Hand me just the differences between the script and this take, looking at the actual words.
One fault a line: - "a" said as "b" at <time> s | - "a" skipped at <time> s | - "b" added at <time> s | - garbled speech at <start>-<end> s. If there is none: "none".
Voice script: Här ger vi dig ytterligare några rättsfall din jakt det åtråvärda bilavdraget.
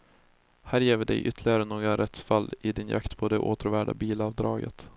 - "i" added at 2.6 s
- "på" added at 3.2 s